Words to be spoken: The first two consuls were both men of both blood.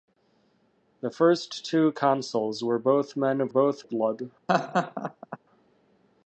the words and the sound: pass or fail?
fail